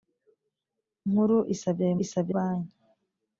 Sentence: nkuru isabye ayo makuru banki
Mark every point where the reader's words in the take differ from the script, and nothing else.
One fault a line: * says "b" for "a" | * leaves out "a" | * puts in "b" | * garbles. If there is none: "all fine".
* says "isabye" for "makuru"